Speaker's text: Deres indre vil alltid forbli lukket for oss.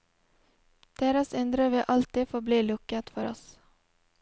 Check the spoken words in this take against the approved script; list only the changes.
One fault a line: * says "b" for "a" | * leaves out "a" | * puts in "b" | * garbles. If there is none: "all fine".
all fine